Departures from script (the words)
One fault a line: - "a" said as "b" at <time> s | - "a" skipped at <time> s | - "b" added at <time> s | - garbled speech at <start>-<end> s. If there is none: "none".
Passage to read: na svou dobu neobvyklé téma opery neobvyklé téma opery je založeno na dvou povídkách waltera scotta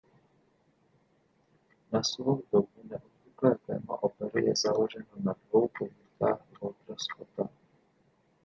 - "neobvyklé téma opery" skipped at 4.5 s